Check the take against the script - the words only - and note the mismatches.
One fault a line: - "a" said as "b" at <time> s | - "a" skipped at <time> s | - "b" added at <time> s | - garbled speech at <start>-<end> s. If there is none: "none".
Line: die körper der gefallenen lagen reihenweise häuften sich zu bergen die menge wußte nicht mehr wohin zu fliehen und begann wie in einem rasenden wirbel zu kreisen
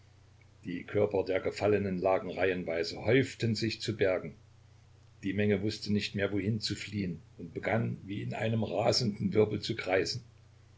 none